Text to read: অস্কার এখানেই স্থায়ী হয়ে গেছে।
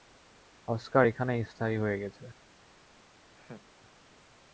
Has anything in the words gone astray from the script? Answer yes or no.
no